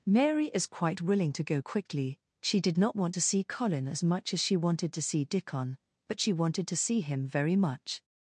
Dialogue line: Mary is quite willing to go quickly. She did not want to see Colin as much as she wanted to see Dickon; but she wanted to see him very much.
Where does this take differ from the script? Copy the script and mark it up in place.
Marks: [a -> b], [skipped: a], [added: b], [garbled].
Mary is quite willing to go quickly. She did not want to see Colin as much as she wanted to see Dickon; but she wanted to see him very much.